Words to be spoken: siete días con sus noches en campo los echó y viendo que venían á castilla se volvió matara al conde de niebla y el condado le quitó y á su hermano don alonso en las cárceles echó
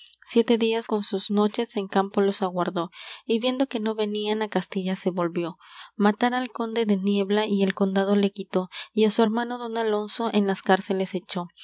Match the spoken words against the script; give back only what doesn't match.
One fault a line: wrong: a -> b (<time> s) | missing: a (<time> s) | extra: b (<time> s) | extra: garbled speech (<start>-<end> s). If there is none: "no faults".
wrong: echó -> aguardó (2.4 s)
extra: no (3.8 s)